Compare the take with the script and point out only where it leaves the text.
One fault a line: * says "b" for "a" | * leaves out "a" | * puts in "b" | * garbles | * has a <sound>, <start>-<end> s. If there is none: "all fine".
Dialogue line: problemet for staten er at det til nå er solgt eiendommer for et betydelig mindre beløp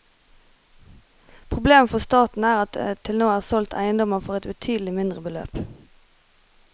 all fine